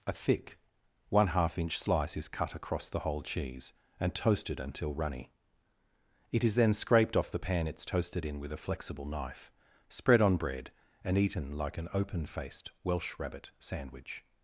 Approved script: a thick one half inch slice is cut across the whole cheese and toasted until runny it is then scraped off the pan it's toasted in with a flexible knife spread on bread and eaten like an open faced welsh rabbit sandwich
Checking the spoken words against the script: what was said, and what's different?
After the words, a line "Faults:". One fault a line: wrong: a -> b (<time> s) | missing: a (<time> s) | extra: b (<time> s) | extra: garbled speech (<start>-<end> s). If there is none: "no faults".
a thick one half inch slice is cut across the whole cheese and toasted until runny it is then scraped off the pan it's toasted in with a flexible knife spread on bread and eaten like an open faced welsh rabbit sandwich
Faults:
no faults